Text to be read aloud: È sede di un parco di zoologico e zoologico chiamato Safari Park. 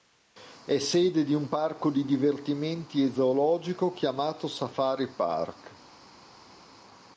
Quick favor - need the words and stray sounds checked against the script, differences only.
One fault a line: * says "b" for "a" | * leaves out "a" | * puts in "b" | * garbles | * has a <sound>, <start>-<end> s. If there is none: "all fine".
* says "divertimenti" for "zoologico"